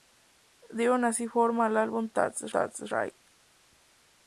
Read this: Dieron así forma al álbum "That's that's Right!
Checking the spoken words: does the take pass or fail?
pass